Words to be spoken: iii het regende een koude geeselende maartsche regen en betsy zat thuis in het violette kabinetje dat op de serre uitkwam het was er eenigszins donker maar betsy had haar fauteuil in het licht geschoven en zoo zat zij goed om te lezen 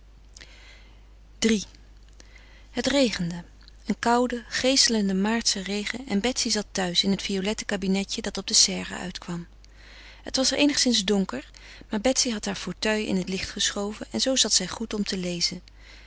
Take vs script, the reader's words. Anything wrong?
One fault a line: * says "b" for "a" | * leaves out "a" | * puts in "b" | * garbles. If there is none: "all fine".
all fine